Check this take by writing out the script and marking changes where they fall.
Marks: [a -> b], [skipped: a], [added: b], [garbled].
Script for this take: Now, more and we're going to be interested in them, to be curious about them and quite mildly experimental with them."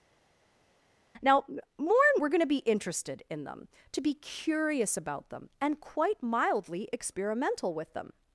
Now, more and we're going to be interested in them, to be curious about them and quite mildly experimental with them."